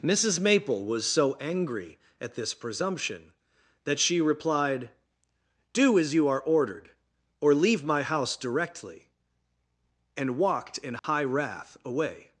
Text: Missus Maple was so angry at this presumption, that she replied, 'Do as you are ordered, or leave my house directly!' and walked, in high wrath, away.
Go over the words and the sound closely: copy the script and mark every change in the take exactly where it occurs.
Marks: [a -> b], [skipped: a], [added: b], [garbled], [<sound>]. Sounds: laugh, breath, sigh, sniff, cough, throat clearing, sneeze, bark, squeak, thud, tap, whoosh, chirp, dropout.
Missus Maple was so angry at this presumption, that she replied, 'Do as you are ordered, or leave my house directly!' and walked, in high [dropout] wrath, away.